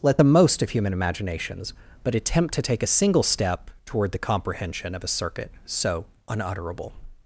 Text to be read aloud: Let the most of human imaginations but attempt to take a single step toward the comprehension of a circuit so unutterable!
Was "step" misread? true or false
false